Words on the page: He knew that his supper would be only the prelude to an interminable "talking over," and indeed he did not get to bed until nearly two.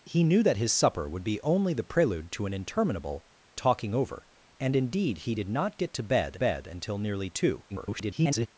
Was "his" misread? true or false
false